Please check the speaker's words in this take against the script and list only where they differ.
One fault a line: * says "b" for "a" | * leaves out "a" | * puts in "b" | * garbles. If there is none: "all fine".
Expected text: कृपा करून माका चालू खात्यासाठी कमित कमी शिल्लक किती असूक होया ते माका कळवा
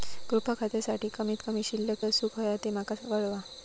* leaves out "करून माका चालू"
* leaves out "किती"